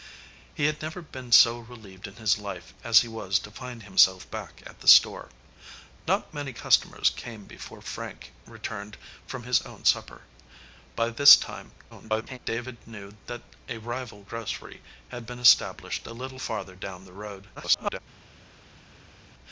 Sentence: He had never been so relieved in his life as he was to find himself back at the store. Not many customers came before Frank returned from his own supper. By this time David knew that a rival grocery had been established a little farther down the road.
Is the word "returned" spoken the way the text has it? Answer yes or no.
yes